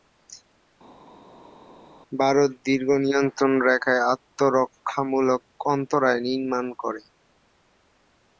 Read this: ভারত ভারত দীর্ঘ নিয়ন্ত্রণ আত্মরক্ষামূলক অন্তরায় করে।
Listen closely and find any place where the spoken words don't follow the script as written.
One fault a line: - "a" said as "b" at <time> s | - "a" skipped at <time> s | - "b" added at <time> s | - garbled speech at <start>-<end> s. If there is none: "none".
- "ভারত" skipped at 2.5 s
- "রেখায়" added at 3.7 s
- "নির্মাণ" added at 6.3 s